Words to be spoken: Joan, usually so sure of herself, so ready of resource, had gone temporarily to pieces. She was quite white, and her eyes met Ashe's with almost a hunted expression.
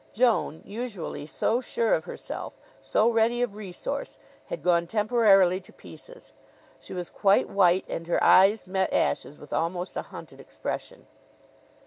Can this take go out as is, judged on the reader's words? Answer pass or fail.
pass